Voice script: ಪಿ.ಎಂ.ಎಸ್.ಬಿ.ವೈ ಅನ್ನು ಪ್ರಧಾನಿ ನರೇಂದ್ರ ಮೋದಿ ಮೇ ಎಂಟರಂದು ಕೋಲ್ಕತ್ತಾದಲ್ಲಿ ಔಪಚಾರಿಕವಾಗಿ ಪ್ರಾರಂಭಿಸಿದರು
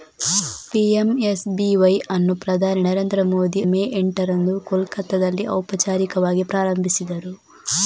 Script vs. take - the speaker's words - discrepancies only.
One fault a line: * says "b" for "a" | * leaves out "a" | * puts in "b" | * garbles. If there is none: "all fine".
all fine